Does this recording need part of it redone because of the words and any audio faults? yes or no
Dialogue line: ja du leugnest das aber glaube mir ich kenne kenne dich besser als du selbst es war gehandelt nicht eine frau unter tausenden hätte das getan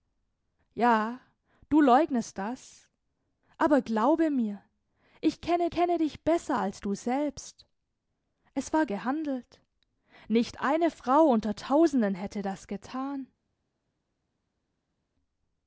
no